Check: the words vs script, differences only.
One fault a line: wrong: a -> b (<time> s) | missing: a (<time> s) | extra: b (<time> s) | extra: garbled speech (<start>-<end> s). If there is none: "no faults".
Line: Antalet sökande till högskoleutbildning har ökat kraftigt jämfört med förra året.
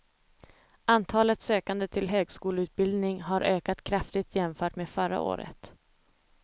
no faults